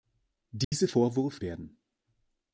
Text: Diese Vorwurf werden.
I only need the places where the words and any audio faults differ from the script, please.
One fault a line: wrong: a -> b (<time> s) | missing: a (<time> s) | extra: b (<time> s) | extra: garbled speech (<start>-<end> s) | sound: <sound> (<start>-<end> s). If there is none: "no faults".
sound: dropout (0.6-0.7 s)